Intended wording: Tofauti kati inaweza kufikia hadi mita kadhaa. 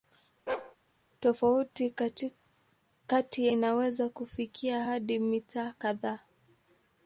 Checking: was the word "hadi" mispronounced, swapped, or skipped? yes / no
no